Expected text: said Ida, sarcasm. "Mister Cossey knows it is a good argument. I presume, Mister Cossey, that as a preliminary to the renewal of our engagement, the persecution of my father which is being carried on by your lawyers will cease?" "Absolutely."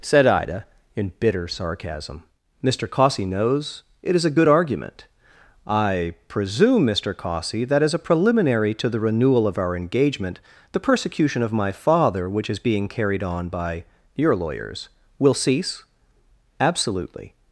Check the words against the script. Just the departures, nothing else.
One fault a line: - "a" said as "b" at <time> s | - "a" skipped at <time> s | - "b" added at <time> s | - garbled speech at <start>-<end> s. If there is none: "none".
- "in bitter" added at 0.9 s